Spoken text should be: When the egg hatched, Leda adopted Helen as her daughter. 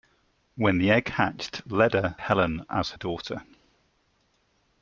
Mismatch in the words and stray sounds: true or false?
true